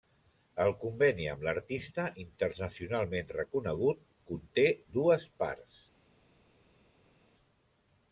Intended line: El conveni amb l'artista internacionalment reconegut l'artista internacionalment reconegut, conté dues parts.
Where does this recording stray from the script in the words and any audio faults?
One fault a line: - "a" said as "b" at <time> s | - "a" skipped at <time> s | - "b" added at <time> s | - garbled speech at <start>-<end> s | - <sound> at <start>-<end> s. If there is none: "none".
- "l'artista internacionalment reconegut" skipped at 4.0 s